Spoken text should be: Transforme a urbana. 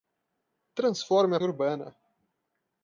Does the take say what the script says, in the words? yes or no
yes